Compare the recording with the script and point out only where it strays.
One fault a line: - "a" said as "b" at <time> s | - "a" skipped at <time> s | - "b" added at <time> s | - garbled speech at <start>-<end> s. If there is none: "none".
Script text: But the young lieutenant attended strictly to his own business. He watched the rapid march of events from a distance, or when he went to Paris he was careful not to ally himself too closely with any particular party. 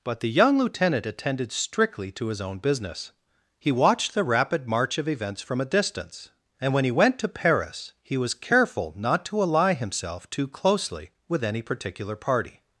- "or" said as "and" at 6.6 s